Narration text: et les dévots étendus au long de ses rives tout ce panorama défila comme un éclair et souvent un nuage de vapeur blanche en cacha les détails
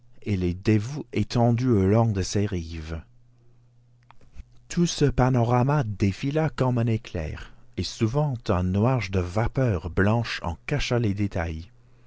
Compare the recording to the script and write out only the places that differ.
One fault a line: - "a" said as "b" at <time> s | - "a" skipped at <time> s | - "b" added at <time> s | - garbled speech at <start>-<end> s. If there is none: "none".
none